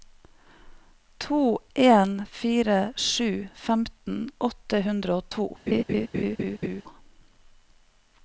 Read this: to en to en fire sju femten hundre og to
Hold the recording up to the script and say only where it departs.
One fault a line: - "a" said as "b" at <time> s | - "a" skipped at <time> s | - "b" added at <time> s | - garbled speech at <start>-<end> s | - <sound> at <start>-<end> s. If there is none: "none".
- "to en" skipped at 2.2 s
- "åtte" added at 4.5 s
- laugh at 5.7-6.8 s